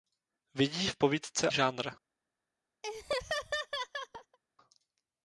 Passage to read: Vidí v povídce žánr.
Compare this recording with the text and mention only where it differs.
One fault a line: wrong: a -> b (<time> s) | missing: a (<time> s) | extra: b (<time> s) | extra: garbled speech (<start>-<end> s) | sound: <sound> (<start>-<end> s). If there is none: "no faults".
sound: laugh (2.8-4.4 s)